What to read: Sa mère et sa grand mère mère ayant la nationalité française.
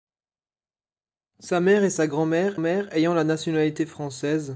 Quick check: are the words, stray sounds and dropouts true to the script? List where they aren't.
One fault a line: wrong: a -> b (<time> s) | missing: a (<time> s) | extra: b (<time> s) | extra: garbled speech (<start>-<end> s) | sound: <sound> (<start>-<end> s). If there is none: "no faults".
no faults